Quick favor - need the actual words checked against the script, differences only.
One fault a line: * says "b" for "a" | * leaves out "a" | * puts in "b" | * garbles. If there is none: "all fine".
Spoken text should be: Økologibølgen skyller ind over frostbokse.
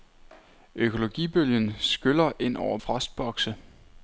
all fine